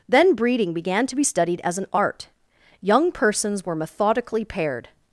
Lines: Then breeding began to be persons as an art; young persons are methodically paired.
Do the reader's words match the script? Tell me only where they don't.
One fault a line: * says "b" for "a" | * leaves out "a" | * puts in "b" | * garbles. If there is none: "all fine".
* says "studied" for "persons"
* says "were" for "are"